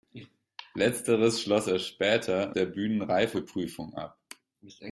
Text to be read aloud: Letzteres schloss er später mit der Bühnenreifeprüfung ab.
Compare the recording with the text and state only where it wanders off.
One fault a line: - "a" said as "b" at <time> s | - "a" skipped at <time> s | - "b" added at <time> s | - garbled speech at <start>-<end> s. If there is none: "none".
- "mit" skipped at 2.5 s